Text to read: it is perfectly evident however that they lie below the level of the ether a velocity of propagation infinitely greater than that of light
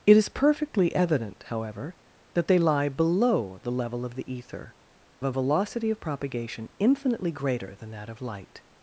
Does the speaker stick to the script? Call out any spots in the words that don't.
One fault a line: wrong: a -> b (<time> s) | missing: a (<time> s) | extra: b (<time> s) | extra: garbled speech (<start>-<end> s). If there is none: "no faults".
no faults